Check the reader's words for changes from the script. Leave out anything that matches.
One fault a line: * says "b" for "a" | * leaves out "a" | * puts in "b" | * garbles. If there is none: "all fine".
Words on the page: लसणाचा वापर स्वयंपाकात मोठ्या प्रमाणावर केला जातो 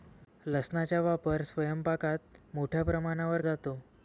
* leaves out "केला"